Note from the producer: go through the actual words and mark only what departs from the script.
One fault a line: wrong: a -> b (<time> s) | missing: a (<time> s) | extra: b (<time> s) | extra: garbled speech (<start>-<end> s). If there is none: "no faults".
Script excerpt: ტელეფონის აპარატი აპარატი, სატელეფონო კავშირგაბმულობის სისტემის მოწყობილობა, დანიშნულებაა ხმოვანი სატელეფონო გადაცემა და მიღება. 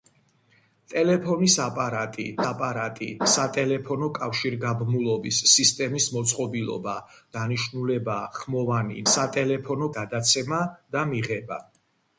no faults